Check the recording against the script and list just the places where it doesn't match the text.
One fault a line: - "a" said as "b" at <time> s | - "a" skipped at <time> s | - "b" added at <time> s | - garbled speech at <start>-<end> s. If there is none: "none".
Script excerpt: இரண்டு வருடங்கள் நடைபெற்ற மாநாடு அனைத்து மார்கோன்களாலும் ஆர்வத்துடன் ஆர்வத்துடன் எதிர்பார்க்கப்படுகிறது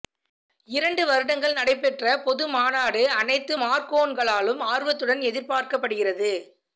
- "பொது" added at 2.2 s
- "ஆர்வத்துடன்" skipped at 5.2 s